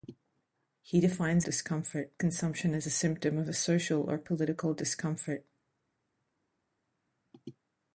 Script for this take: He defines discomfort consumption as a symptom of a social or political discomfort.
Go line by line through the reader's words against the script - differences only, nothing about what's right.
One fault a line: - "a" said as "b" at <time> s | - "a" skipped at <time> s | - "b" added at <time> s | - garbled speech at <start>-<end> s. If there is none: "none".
none